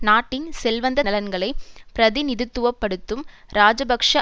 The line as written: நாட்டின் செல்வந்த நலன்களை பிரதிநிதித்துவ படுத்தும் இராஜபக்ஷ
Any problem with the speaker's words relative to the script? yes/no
no